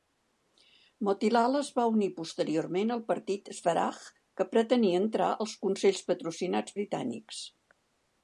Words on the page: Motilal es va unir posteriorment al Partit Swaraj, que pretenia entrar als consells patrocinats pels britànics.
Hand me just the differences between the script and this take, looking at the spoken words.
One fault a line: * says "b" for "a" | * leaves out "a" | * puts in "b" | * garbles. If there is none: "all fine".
* leaves out "pels"